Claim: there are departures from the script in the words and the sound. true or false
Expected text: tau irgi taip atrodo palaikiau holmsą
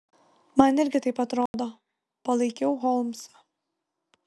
true